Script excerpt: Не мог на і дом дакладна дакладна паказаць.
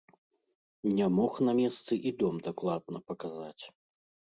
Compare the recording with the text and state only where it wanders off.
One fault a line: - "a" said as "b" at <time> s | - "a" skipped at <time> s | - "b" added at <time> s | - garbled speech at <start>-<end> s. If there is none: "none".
- "месцы" added at 1.6 s
- "дакладна" skipped at 3.1 s